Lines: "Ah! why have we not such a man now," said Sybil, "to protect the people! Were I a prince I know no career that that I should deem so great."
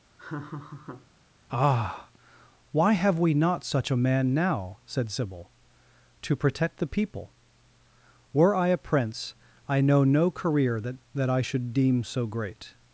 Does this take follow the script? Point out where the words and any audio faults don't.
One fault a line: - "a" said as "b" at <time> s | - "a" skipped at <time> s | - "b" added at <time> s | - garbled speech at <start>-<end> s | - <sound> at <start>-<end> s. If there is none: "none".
- laugh at 0.2-1.1 s